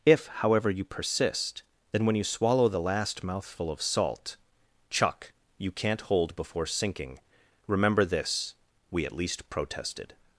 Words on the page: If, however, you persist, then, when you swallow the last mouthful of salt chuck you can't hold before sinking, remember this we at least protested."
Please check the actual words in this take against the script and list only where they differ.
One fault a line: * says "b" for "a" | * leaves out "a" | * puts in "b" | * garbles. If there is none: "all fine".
all fine